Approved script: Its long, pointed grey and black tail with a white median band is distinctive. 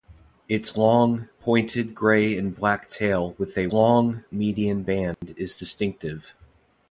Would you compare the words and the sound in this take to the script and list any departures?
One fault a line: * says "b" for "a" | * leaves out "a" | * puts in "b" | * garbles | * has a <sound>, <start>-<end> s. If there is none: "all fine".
* says "long" for "white"
* has a dropout, 5.1-5.2 s